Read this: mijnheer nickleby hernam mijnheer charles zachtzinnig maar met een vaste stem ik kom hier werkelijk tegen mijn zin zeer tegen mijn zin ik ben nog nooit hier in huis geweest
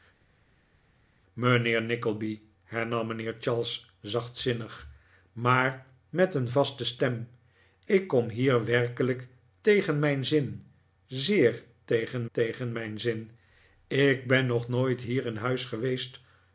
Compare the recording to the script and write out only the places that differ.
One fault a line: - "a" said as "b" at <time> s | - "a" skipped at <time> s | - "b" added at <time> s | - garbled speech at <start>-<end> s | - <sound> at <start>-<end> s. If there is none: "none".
- "tegen" added at 12.3 s